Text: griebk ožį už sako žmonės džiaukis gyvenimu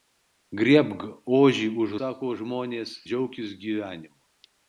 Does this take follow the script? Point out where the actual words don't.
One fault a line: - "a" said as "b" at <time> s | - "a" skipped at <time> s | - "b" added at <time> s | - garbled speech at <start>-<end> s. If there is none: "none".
none